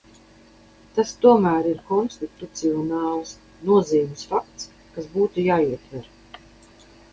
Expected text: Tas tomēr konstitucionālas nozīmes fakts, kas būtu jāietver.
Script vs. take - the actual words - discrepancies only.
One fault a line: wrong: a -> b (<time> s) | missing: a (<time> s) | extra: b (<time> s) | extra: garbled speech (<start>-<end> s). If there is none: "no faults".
extra: ir (1.7 s)